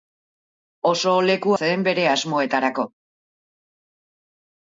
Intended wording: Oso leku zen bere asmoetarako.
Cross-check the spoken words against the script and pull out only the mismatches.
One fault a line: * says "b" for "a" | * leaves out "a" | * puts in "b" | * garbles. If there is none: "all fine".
all fine